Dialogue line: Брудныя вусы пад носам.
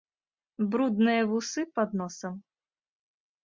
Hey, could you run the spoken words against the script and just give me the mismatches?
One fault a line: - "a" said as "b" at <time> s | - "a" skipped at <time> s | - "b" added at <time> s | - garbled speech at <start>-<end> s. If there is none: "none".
none